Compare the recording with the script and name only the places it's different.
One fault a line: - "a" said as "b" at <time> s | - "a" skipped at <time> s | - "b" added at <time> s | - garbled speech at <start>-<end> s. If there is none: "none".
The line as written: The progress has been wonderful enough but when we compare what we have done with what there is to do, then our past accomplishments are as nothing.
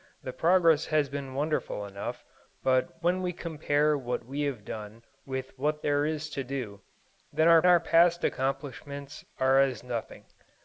- "our" added at 7.7 s